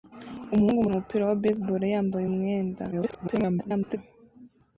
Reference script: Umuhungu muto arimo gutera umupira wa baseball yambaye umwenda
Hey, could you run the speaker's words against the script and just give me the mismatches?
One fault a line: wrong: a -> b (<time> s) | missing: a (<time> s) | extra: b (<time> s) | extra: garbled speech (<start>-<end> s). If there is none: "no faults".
missing: muto arimo gutera (0.8 s)
extra: garbled speech (2.9-4.0 s)